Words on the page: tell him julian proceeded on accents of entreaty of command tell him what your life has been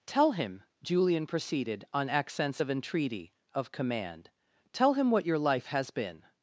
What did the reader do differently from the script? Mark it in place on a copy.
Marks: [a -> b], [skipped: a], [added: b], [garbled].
tell him julian proceeded on accents of entreaty of command tell him what your life has been